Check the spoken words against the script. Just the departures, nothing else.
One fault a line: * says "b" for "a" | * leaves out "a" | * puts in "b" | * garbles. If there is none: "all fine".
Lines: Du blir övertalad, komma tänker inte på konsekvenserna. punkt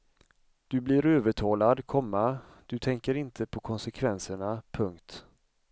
* puts in "du"